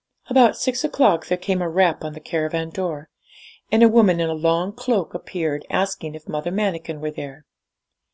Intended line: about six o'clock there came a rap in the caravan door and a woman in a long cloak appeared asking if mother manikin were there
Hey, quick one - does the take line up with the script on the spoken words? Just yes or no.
no